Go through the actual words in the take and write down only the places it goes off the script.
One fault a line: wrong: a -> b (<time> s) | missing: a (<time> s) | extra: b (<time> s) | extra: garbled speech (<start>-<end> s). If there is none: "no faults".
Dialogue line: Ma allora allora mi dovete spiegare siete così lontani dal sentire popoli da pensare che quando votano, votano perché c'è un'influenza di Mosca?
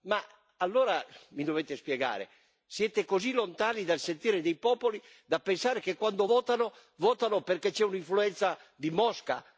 missing: allora (1.0 s)
extra: dei (4.4 s)